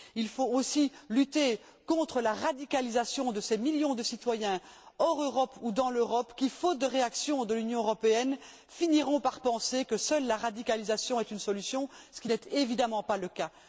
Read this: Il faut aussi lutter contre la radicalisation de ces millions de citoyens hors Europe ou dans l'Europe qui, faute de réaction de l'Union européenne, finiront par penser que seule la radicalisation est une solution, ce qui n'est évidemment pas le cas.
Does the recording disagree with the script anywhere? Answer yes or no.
no